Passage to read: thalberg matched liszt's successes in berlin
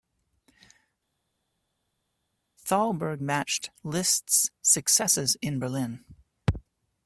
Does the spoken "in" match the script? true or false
true